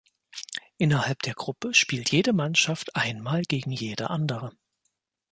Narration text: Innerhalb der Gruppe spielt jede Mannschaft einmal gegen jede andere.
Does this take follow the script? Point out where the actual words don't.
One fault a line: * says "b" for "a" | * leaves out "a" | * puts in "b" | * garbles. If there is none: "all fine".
all fine